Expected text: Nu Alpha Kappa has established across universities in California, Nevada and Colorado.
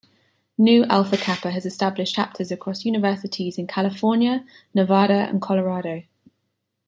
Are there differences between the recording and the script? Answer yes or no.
yes